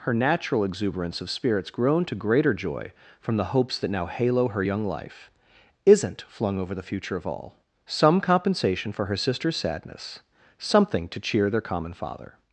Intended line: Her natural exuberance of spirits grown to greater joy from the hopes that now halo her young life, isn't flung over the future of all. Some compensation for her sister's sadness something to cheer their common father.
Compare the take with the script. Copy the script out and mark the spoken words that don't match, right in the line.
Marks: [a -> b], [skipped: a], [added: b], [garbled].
Her natural exuberance of spirits grown to greater joy from the hopes that now halo her young life, isn't flung over the future of all. Some compensation for her sister's sadness something to cheer their common father.